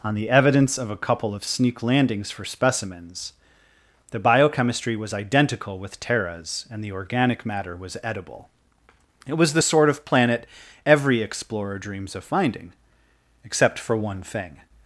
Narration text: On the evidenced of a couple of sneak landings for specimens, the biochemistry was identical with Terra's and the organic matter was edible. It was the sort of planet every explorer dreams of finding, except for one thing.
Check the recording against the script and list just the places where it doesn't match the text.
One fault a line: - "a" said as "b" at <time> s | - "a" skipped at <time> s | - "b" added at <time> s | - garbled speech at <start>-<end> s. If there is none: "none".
- "evidenced" said as "evidence" at 0.3 s